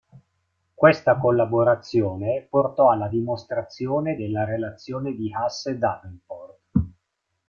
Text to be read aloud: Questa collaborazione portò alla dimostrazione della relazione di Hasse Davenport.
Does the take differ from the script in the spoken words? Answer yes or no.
no